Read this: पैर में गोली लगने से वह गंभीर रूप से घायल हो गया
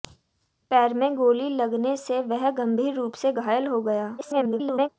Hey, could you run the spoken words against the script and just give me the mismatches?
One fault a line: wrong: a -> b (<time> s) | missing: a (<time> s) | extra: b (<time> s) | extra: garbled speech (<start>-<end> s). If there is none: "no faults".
extra: garbled speech (4.2-4.9 s)